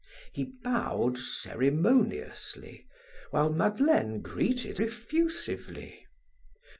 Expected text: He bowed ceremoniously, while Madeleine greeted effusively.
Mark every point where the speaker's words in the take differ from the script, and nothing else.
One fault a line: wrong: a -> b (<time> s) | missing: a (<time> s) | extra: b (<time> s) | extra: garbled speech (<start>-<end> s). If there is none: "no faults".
no faults